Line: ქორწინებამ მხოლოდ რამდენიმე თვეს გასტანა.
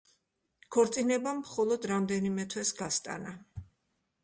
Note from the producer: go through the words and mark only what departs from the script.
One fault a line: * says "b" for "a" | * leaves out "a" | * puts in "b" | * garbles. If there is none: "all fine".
all fine